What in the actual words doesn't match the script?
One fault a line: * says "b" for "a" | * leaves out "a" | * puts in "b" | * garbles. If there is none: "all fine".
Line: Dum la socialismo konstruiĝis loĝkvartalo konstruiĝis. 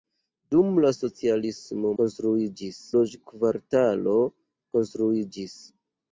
all fine